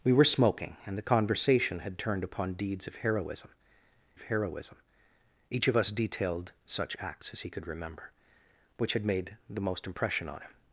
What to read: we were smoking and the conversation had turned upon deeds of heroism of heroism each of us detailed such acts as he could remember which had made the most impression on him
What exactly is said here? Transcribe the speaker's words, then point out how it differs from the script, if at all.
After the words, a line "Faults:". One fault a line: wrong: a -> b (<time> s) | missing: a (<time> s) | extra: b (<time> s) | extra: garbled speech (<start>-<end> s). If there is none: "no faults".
we were smoking and the conversation had turned upon deeds of heroism of heroism each of us detailed such acts as he could remember which had made the most impression on him
Faults:
no faults